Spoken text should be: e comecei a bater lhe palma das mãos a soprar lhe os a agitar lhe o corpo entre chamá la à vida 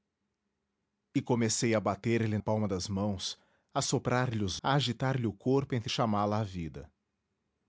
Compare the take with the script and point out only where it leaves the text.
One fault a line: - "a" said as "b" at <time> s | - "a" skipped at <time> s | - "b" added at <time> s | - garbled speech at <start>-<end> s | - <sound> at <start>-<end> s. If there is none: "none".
none